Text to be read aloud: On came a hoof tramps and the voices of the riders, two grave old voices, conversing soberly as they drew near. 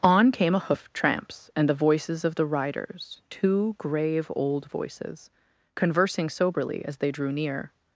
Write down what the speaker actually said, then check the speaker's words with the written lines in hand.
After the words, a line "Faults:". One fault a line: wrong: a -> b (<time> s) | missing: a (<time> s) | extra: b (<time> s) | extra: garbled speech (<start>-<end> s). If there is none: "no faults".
On came a hoof tramps and the voices of the riders, two grave old voices, conversing soberly as they drew near.
Faults:
no faults